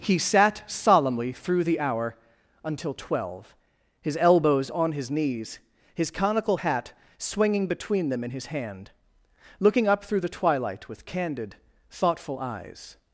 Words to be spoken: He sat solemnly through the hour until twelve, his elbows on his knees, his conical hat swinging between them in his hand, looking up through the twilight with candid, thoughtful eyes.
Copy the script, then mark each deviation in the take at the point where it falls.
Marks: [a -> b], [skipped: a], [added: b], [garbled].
He sat solemnly through the hour until twelve, his elbows on his knees, his conical hat swinging between them in his hand, looking up through the twilight with candid, thoughtful eyes.